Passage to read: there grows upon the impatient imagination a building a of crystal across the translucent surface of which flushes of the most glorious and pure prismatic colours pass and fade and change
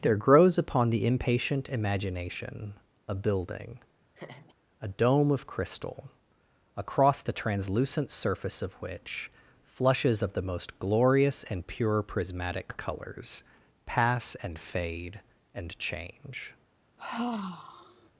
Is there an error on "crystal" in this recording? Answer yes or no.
no